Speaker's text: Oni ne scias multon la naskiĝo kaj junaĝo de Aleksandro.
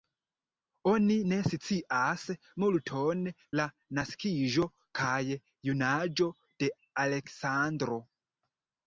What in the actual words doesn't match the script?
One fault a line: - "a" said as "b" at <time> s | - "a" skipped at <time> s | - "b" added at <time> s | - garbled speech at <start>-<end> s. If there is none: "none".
none